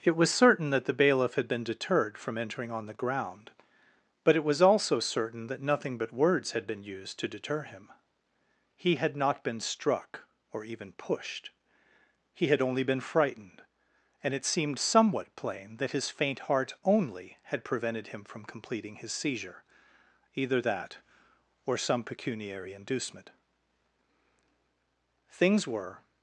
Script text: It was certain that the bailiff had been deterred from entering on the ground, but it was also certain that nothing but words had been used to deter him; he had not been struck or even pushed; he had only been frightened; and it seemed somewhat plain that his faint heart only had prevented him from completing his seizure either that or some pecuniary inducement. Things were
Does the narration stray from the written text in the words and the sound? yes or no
no